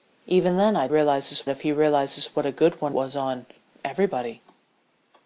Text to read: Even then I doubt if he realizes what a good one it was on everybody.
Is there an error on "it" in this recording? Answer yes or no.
yes